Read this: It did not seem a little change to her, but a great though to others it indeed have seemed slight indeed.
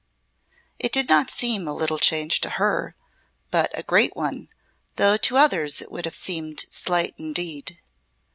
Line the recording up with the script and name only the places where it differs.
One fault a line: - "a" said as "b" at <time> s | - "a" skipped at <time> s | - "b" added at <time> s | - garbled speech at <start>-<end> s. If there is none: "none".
- "one" added at 4.2 s
- "indeed" said as "would" at 5.9 s